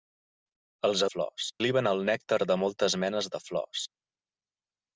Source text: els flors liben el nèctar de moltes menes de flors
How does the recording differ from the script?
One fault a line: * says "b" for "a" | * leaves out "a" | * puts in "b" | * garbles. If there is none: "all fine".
all fine